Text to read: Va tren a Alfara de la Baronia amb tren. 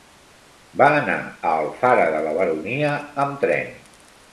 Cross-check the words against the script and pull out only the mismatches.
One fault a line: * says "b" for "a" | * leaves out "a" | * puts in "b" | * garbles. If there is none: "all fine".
* says "anar" for "tren"